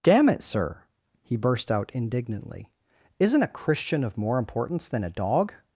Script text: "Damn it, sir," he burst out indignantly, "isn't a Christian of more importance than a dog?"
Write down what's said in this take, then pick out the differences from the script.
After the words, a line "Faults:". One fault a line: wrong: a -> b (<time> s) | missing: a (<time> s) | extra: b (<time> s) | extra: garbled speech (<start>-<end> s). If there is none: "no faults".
"Damn it, sir," he burst out indignantly, "isn't a Christian of more importance than a dog?"
Faults:
no faults